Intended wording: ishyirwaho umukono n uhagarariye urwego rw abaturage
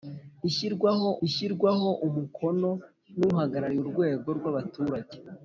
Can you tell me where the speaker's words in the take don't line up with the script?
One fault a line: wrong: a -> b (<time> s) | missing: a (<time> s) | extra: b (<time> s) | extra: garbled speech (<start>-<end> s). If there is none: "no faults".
extra: ishyirwaho (1.3 s)